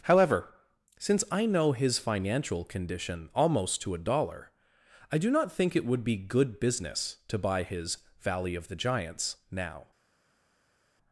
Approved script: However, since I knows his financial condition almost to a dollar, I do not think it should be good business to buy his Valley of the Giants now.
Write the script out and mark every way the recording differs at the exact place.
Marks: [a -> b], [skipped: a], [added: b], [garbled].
However, since I [knows -> know] his financial condition almost to a dollar, I do not think it [should -> would] be good business to buy his Valley of the Giants now.